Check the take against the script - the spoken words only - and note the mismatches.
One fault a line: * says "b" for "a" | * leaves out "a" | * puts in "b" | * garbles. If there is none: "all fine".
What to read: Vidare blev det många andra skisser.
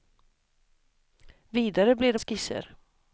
* leaves out "många andra"